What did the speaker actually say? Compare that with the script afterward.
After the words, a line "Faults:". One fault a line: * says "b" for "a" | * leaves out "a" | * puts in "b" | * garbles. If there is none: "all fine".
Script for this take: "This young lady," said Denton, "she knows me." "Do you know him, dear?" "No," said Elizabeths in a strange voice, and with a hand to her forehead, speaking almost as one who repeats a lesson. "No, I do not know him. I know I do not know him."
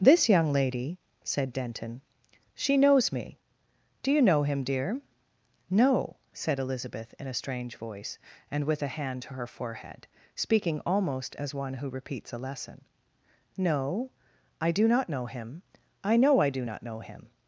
"This young lady," said Denton, "she knows me." "Do you know him, dear?" "No," said Elizabeth in a strange voice, and with a hand to her forehead, speaking almost as one who repeats a lesson. "No, I do not know him. I know I do not know him."
Faults:
* says "Elizabeth" for "Elizabeths"